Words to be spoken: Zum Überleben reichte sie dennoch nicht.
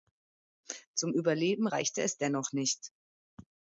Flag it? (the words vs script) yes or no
yes